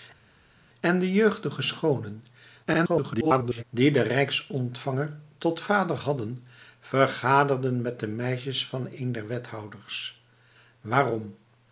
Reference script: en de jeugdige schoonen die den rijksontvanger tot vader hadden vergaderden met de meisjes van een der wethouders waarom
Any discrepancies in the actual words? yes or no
yes